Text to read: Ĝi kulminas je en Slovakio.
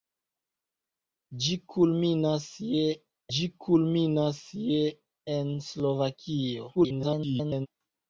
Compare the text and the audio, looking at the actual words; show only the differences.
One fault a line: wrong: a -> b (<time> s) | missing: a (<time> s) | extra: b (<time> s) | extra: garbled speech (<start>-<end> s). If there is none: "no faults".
extra: ĝi kulminas je (3.3 s)
extra: garbled speech (6.7-7.7 s)